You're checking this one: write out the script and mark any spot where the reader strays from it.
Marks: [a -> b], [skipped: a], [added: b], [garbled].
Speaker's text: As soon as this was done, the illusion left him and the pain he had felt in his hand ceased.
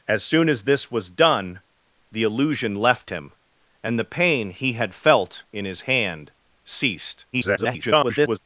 As soon as this was done, the illusion left him and the pain he had felt in his hand ceased. [garbled]